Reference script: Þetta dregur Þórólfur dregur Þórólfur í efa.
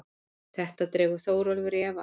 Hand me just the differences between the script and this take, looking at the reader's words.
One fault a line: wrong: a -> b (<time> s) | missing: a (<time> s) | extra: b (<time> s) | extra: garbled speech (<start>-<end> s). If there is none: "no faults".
missing: dregur Þórólfur (1.8 s)